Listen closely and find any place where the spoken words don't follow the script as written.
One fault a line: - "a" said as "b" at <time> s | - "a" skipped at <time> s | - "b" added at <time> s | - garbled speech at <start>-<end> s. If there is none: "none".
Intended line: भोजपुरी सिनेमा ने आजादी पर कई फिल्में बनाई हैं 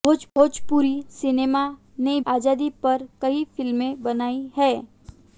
none